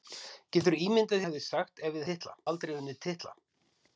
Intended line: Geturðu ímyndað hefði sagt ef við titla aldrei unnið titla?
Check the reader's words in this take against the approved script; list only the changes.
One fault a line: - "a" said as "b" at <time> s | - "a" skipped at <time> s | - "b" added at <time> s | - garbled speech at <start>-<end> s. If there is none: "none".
none